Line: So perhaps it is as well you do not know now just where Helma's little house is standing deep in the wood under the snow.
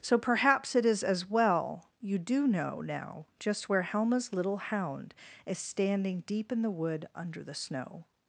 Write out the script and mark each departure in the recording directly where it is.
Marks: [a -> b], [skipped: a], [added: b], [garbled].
So perhaps it is as well you do [skipped: not] know now just where Helma's little [house -> hound] is standing deep in the wood under the snow.